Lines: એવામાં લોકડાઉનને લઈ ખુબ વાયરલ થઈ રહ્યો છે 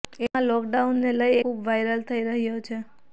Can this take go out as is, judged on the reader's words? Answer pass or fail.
pass